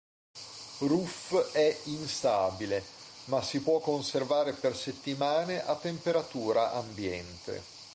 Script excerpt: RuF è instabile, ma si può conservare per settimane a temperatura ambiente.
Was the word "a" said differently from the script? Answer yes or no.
no